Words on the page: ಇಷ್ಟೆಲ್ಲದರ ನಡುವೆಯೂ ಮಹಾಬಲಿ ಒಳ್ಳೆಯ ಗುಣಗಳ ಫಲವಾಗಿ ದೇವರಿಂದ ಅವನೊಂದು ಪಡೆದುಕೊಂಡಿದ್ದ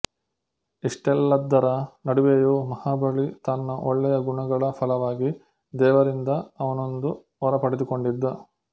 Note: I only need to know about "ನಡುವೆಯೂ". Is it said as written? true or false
true